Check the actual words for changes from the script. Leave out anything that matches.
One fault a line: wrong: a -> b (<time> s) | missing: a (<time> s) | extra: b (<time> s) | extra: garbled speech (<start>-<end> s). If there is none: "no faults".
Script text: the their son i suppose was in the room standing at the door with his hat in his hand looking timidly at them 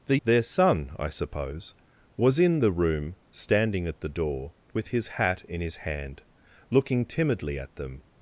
no faults